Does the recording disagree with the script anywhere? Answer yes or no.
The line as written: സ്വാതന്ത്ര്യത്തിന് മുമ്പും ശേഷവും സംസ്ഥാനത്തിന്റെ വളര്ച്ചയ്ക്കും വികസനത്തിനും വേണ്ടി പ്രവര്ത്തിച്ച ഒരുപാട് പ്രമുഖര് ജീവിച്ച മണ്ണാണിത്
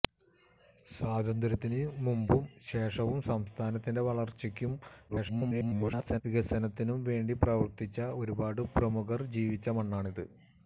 yes